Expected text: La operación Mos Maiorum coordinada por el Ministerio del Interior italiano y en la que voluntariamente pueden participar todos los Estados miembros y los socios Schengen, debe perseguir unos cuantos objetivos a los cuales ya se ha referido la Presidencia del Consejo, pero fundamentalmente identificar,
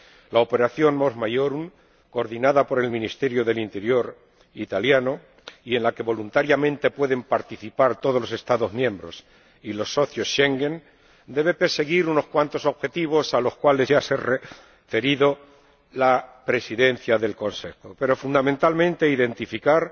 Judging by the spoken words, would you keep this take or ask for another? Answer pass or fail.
pass